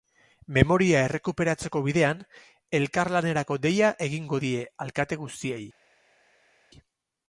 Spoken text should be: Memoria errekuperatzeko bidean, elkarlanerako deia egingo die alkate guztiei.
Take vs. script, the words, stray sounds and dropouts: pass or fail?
pass